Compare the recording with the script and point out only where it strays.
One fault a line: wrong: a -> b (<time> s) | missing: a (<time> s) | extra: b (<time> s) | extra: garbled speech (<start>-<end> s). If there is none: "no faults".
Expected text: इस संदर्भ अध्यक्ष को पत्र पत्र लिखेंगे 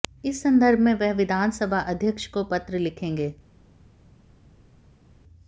extra: में वह विधानसभा (0.8 s)
missing: पत्र (2.8 s)